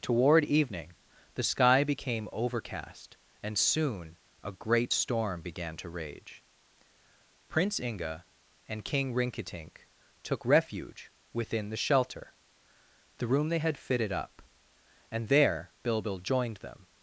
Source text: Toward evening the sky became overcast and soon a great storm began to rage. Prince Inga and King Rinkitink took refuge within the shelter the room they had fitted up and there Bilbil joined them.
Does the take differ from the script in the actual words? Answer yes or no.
no